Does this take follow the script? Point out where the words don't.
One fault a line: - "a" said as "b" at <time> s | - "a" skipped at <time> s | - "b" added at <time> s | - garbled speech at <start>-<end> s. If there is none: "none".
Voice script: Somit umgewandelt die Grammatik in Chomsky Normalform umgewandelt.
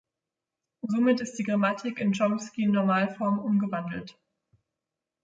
- "umgewandelt" said as "ist" at 1.2 s